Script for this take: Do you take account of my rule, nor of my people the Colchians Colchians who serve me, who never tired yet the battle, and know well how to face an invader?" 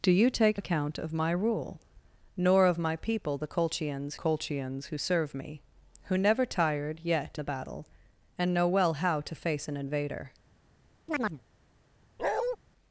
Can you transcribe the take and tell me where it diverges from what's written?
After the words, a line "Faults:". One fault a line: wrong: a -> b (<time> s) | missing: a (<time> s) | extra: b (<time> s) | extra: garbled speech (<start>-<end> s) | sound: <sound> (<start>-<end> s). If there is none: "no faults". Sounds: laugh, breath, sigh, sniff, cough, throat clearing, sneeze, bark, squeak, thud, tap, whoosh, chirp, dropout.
Do you take account of my rule, nor of my people the Colchians Colchians who serve me, who never tired yet the battle, and know well how to face an invader?"
Faults:
sound: chirp (11.1-11.4 s)
sound: bark (12.2-12.6 s)